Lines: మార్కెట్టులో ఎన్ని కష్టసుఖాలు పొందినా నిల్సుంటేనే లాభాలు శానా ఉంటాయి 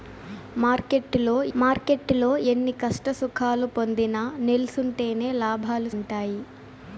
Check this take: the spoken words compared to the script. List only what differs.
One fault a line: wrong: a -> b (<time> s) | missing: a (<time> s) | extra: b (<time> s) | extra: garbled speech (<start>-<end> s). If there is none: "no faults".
extra: మార్కెట్టులో (1.6 s)
missing: శానా (5.9 s)